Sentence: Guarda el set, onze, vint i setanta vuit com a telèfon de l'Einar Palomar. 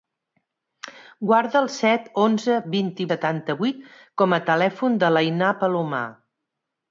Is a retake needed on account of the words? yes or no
no